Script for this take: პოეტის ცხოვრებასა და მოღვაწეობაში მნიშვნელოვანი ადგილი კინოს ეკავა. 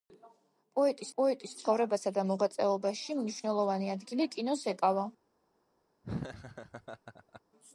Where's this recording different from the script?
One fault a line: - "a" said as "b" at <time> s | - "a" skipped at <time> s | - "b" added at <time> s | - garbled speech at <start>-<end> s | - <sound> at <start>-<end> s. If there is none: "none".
- "პოეტის" added at 1.2 s
- laugh at 6.0-7.4 s